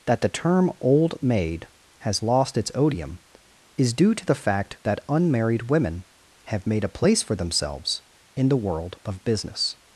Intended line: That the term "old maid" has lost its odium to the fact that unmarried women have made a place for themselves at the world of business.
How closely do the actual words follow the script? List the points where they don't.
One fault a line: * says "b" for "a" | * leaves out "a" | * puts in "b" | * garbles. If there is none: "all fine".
* puts in "is due"
* says "in" for "at"